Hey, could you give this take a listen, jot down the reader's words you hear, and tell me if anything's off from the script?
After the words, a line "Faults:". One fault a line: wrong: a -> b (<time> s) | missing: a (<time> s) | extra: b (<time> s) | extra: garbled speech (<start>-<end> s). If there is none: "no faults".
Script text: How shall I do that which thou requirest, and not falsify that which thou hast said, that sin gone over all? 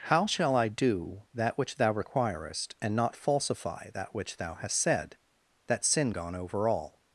How shall I do that which thou requirest, and not falsify that which thou hast said, that sin gone over all?
Faults:
no faults